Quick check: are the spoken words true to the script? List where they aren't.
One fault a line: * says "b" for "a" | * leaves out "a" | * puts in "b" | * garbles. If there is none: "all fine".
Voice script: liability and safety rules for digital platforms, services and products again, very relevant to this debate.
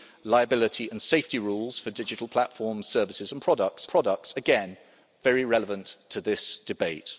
* puts in "products"